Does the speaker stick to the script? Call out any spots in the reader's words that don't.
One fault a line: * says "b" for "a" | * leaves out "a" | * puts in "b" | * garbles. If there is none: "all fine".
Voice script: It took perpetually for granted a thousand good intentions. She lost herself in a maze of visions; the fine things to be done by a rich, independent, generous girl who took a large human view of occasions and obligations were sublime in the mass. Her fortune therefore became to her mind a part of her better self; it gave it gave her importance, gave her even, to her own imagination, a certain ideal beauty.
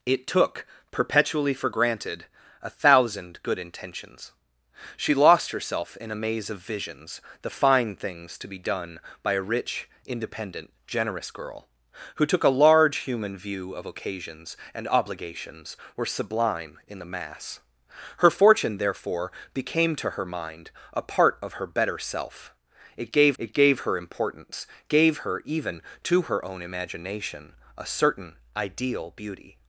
all fine